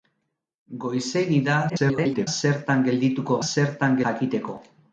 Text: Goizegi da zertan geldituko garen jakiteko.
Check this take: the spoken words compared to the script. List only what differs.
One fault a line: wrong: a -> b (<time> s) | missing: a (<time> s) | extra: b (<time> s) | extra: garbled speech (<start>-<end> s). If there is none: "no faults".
extra: garbled speech (1.7-2.3 s)
wrong: garen -> zertan (3.5 s)